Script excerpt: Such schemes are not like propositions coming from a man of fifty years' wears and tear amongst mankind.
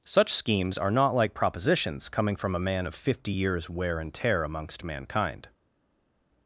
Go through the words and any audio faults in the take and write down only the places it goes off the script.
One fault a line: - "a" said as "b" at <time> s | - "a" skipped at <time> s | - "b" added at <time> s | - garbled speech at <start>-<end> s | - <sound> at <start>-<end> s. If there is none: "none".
- "wears" said as "wear" at 3.7 s